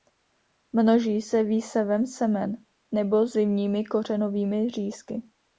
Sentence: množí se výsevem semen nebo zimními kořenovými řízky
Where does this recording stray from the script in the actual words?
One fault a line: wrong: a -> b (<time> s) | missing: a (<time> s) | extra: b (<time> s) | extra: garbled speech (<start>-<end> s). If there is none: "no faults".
no faults